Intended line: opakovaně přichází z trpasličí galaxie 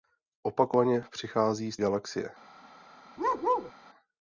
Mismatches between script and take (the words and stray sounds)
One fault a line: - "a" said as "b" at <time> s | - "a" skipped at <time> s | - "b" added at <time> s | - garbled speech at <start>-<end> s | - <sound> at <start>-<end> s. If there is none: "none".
- "trpasličí" skipped at 1.8 s
- bark at 3.2-3.7 s